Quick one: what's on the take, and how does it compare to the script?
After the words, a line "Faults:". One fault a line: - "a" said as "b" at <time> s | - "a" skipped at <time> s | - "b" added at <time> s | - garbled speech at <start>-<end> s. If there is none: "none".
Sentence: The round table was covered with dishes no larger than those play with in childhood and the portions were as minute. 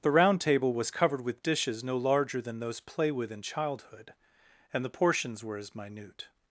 The round table was covered with dishes no larger than those play with in childhood and the portions were as minute.
Faults:
none